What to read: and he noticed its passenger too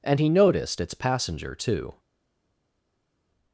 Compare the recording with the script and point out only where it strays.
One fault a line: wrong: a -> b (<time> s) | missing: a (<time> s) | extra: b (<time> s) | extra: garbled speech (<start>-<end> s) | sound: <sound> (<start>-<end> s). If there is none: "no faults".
no faults